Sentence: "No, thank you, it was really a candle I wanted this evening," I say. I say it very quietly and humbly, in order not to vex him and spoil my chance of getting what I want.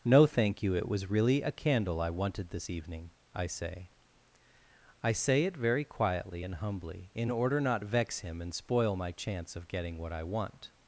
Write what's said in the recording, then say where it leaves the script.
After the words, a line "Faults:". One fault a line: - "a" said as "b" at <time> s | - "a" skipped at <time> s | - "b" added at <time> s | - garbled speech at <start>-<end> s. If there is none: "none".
"No, thank you, it was really a candle I wanted this evening," I say. I say it very quietly and humbly, in order not vex him and spoil my chance of getting what I want.
Faults:
- "to" skipped at 7.8 s